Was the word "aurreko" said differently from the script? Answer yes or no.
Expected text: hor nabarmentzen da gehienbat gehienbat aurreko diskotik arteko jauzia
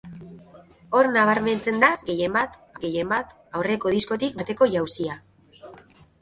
no